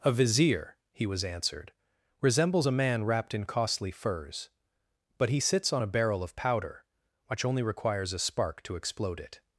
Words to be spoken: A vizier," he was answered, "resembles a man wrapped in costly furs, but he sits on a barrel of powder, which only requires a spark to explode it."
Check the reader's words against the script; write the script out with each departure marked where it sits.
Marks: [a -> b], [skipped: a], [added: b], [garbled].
A vizier," he was answered, "resembles a man wrapped in costly furs, but he sits on a barrel of powder, which only requires a spark to explode it."